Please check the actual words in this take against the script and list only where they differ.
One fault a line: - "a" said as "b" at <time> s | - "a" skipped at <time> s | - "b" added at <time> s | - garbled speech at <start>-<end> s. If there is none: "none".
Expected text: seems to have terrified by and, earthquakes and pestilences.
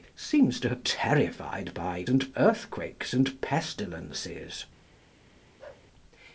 none